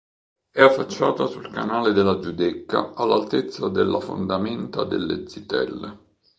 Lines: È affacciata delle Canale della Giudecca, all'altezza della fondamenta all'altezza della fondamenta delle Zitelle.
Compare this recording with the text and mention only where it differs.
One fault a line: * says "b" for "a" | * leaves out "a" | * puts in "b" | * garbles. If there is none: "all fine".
* says "sul" for "delle"
* leaves out "all'altezza della fondamenta"